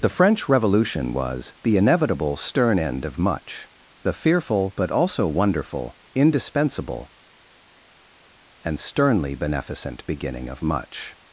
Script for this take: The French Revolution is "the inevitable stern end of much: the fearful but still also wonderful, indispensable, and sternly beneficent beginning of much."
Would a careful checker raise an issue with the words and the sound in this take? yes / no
yes